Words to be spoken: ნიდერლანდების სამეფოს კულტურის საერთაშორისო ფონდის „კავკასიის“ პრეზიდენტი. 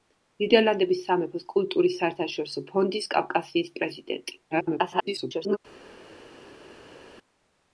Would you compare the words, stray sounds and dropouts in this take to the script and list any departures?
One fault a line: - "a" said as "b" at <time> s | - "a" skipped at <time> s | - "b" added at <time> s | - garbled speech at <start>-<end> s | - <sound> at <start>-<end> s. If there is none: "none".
- garbled speech at 4.5-5.6 s